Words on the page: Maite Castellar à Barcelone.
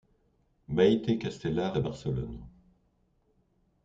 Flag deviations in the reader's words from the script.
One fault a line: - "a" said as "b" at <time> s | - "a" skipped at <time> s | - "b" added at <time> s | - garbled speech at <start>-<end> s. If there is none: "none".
none